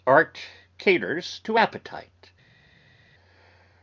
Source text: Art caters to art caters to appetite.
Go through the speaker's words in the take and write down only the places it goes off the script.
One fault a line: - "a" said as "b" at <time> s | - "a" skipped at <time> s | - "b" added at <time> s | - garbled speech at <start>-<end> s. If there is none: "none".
- "art caters to" skipped at 1.6 s